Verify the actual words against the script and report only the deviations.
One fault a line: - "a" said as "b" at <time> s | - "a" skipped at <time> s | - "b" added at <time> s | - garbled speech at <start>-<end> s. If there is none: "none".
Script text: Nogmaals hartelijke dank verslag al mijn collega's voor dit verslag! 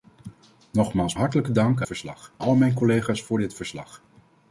none